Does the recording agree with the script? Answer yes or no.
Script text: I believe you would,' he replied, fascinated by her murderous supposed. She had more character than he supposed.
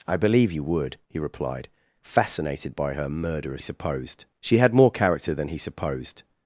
yes